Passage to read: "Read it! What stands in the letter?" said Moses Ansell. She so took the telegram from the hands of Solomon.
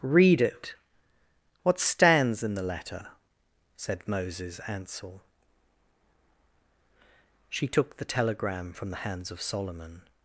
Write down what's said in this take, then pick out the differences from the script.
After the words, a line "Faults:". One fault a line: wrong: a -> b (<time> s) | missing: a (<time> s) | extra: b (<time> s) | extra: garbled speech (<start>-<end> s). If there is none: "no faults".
"Read it! What stands in the letter?" said Moses Ansell. She took the telegram from the hands of Solomon.
Faults:
missing: so (7.7 s)